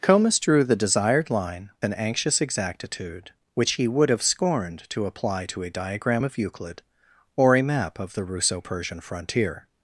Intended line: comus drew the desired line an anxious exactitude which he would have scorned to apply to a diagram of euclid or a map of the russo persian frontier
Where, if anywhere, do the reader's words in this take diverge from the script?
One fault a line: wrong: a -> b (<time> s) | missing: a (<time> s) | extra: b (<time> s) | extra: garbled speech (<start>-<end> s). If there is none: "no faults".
no faults